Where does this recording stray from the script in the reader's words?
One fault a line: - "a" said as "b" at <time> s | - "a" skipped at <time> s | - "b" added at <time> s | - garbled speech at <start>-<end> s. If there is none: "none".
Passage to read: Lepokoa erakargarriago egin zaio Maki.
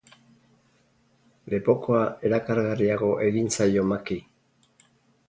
none